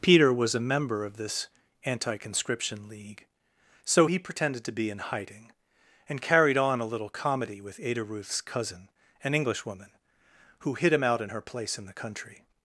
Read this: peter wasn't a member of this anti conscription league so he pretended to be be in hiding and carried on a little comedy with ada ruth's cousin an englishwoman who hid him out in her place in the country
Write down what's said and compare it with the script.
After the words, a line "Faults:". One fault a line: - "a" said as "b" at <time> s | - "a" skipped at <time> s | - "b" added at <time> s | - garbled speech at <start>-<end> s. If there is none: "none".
peter was a member of this anti conscription league so he pretended to be in hiding and carried on a little comedy with ada ruth's cousin an englishwoman who hid him out in her place in the country
Faults:
- "wasn't" said as "was" at 0.3 s
- "be" skipped at 4.9 s